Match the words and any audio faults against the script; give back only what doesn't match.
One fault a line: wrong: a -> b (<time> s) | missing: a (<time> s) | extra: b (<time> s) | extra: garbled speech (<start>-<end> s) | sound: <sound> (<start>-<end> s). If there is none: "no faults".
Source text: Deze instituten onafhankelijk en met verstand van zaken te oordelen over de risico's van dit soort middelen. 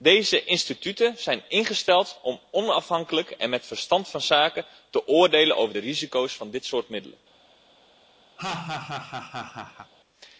extra: zijn ingesteld om (1.2 s)
sound: laugh (8.4-9.9 s)